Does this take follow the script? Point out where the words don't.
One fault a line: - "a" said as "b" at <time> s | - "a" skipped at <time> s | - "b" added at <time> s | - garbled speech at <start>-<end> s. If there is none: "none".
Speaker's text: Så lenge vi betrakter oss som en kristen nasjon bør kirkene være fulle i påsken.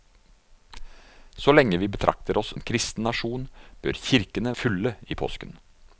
- "som" skipped at 2.5 s
- "være" skipped at 4.5 s